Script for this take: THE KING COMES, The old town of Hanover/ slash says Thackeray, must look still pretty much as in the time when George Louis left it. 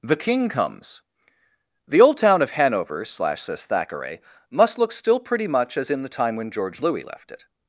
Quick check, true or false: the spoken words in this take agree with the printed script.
true